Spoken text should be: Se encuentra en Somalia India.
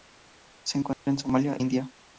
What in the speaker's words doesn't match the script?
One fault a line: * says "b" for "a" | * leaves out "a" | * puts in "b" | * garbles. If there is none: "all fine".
all fine